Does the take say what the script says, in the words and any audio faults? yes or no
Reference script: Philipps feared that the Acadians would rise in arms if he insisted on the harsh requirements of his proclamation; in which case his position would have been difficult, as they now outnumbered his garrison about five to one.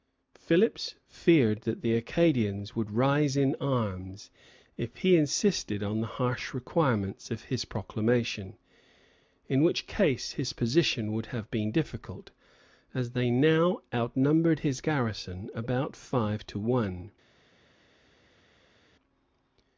yes